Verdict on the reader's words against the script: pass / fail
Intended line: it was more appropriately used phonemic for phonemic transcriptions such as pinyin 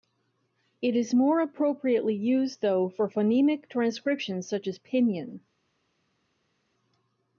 fail